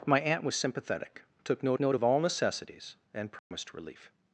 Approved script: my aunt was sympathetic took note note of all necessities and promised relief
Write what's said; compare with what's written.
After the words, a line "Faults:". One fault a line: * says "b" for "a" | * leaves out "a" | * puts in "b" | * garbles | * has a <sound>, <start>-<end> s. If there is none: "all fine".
my aunt was sympathetic took note note of all necessities and promised relief
Faults:
* has a dropout, 3.4-3.5 s